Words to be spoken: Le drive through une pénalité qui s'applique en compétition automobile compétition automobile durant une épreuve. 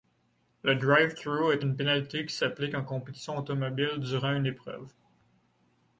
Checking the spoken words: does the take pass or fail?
fail